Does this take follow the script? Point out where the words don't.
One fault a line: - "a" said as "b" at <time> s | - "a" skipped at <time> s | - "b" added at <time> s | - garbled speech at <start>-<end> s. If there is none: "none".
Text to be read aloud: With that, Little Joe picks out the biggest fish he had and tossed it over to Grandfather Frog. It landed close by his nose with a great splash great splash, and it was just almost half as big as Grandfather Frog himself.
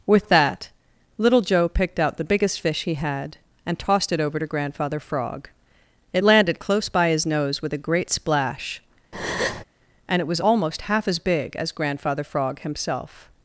- "picks" said as "picked" at 1.7 s
- "great splash" skipped at 8.8 s
- "just" skipped at 10.4 s